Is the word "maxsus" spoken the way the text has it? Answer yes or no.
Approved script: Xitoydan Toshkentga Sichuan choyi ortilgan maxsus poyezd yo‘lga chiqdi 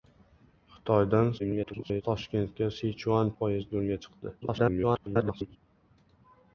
no